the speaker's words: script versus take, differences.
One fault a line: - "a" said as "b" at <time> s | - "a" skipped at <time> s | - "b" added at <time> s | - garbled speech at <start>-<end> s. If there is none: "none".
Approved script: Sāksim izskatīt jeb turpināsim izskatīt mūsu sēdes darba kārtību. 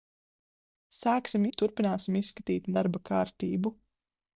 - "izskatīt" skipped at 1.4 s
- "mūsu sēdes" skipped at 2.7 s